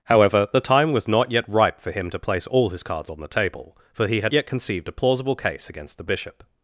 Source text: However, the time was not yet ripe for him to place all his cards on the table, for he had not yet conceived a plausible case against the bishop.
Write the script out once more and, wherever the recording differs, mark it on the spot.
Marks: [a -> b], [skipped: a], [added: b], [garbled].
However, the time was not yet ripe for him to place all his cards on the table, for he had [skipped: not] yet conceived a plausible case against the bishop.